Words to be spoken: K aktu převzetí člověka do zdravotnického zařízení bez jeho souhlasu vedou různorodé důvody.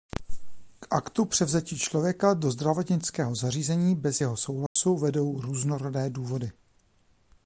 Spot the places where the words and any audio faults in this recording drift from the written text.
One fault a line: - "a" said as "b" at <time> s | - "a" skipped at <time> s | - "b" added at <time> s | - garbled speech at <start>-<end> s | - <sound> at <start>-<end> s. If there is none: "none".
- dropout at 4.7-4.8 s